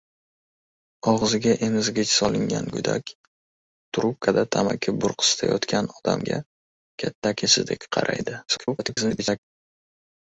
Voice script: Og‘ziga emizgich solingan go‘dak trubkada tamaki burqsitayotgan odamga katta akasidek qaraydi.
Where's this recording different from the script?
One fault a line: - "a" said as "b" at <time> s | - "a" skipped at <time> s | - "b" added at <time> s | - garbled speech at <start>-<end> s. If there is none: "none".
- garbled speech at 8.5-9.4 s